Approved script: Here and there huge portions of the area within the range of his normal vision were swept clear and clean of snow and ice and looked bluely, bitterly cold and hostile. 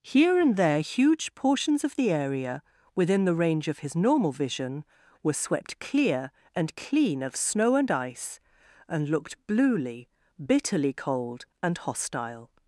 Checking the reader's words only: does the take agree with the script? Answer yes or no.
yes